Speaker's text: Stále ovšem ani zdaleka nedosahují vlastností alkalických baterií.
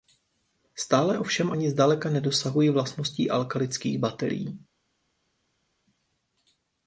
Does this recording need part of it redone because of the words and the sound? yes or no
no